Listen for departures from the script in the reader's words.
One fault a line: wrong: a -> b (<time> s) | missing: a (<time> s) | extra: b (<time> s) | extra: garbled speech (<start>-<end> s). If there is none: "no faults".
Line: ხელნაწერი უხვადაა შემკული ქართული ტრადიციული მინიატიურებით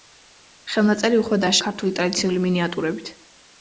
missing: შემკული (1.6 s)